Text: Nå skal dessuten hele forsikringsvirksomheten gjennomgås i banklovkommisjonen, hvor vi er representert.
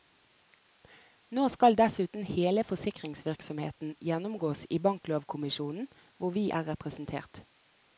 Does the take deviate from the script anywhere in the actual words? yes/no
no